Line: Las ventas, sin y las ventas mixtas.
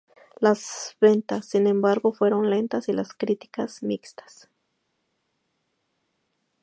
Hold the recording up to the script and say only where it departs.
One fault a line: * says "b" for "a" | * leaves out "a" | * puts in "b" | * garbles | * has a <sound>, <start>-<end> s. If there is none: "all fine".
* puts in "embargo fueron lentas"
* says "críticas" for "ventas"